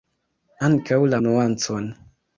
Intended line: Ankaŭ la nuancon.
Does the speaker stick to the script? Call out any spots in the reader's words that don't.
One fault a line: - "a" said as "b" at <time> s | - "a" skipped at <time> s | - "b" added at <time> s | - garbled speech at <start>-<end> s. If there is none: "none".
none